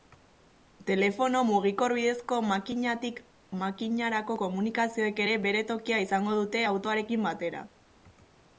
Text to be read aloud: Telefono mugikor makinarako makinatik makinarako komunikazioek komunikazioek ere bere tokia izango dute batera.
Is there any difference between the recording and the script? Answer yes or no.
yes